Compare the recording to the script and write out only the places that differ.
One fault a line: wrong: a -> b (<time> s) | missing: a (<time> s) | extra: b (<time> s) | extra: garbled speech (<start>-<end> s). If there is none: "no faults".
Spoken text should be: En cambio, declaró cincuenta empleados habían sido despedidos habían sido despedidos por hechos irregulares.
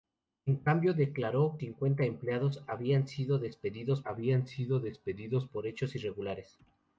no faults